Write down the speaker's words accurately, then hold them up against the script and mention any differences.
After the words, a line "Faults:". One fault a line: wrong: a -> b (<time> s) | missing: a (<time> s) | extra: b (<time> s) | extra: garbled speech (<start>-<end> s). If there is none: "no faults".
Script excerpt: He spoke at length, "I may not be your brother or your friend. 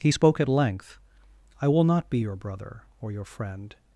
He spoke at length, "I will not be your brother or your friend.
Faults:
wrong: may -> will (1.7 s)